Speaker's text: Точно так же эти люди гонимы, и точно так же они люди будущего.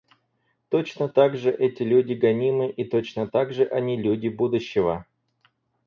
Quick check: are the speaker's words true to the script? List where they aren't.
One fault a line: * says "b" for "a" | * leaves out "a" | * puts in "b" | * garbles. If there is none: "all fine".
all fine